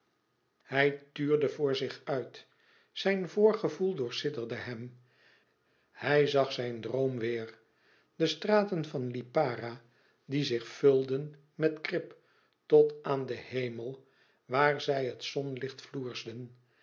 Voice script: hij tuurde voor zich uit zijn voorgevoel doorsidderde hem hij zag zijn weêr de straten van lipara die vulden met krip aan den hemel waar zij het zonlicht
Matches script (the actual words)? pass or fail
fail